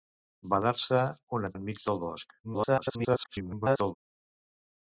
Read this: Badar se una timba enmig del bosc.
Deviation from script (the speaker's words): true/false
true